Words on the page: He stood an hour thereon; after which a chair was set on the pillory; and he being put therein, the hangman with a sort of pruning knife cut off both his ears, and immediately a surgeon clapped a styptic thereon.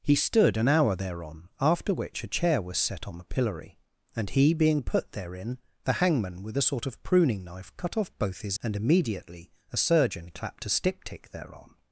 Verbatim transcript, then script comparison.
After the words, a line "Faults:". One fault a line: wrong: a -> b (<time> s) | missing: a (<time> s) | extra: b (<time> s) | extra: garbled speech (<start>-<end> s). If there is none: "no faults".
He stood an hour thereon; after which a chair was set on the pillory; and he being put therein, the hangman with a sort of pruning knife cut off both his and immediately a surgeon clapped a styptic thereon.
Faults:
missing: ears (8.6 s)